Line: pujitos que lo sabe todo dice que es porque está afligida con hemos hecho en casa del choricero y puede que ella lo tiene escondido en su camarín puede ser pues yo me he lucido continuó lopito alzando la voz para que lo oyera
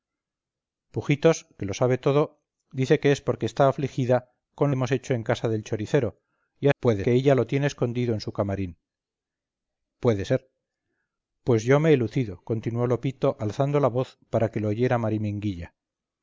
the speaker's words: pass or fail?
pass